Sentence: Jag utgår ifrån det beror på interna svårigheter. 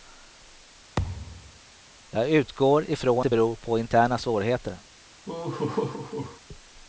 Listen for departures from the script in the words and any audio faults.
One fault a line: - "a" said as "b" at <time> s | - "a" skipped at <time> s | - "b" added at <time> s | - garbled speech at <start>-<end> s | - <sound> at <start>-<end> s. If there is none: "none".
- thud at 1.0-1.6 s
- laugh at 5.3-6.4 s